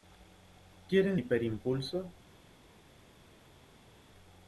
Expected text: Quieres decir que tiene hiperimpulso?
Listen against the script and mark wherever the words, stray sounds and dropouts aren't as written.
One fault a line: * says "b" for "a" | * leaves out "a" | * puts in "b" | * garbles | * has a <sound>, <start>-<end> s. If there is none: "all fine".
* leaves out "decir que tiene"